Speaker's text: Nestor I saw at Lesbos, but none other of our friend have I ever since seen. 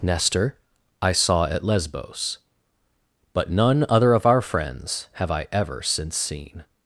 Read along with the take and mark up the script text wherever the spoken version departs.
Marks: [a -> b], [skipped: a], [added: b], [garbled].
Nestor I saw at Lesbos, but none other of our [friend -> friends] have I ever since seen.